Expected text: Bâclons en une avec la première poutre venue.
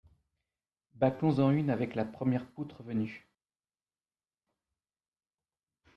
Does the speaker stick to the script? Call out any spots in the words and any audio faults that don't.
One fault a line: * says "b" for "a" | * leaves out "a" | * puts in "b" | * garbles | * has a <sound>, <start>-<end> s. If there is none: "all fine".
all fine